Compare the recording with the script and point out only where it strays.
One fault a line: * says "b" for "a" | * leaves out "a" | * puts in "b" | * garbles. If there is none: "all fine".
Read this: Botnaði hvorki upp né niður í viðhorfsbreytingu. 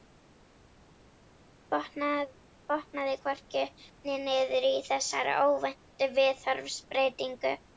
* puts in "þessari óvæntu"